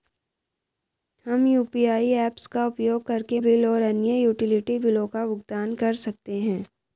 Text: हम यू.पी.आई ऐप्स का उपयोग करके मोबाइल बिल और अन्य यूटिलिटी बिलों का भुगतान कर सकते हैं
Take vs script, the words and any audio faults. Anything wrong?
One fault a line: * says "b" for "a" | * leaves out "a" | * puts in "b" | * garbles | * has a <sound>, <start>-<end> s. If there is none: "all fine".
* leaves out "मोबाइल"